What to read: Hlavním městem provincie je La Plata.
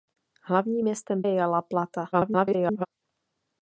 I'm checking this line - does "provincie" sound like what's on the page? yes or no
no